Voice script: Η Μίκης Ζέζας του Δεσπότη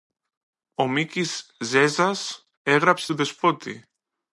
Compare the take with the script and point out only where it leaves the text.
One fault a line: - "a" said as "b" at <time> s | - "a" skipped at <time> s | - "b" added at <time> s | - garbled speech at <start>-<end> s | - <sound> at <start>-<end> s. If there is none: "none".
- "Η" said as "Ο" at 0.8 s
- "έγραψε" added at 2.6 s